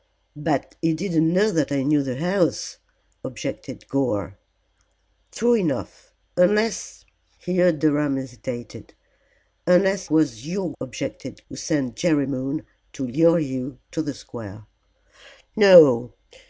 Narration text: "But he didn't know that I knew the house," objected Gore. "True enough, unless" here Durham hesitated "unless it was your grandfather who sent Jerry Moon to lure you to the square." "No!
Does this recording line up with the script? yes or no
no